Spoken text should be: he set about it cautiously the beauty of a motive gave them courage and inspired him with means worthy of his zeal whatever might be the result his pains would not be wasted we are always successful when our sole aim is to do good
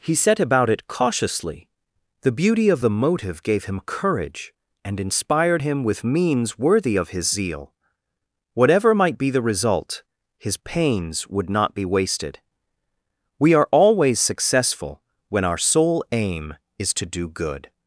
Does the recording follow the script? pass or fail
fail